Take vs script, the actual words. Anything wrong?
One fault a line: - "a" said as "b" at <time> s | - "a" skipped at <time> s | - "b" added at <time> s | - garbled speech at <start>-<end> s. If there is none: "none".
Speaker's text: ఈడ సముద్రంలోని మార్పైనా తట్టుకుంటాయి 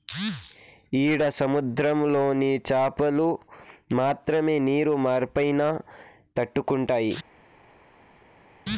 - "చాపలు మాత్రమే నీరు" added at 2.7 s